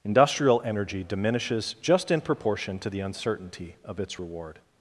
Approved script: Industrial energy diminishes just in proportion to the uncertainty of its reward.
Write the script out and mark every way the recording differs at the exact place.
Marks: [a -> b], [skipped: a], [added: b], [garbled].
Industrial energy diminishes just in proportion to the uncertainty of its reward.